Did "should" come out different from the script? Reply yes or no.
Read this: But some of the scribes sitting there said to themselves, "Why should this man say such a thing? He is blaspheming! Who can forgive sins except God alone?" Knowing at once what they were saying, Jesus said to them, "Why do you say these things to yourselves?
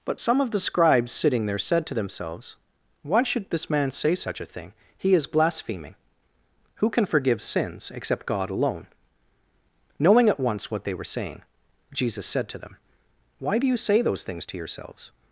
no